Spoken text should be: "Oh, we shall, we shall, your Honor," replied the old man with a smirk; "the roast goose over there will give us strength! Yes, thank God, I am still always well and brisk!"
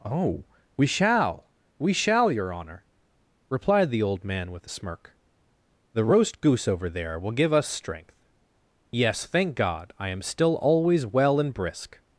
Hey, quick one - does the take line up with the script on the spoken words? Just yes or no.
yes